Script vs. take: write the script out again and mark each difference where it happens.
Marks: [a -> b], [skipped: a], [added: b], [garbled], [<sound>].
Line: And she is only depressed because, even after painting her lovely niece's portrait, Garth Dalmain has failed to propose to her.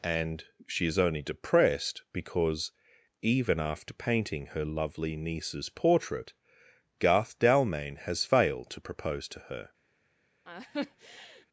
And she is only depressed because, even after painting her lovely niece's portrait, Garth Dalmain has failed to propose to her. [laugh]